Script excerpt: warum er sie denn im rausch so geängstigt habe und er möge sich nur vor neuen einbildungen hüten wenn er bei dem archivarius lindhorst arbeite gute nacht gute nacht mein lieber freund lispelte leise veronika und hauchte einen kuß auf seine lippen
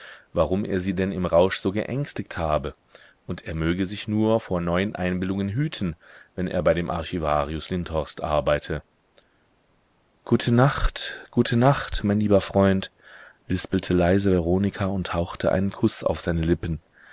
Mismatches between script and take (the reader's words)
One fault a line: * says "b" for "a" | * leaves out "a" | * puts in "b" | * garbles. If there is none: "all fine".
all fine